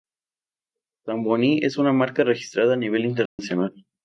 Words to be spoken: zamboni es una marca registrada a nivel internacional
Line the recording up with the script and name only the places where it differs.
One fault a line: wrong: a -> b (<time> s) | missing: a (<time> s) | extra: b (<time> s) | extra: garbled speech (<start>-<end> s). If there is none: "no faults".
no faults